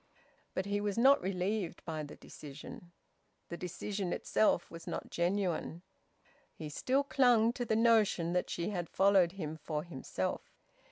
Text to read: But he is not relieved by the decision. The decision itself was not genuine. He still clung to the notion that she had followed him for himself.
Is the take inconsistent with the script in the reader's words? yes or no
yes